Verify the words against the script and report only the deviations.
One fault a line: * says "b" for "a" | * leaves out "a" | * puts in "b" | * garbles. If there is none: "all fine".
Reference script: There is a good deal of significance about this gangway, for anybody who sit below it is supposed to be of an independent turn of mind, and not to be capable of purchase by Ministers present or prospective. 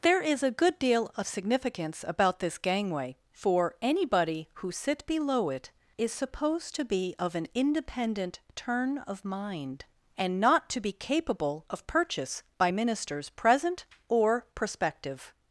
all fine